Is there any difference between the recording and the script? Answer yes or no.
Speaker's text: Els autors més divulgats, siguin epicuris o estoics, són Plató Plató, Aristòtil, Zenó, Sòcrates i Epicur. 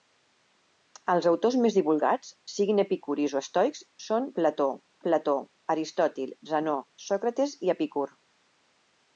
no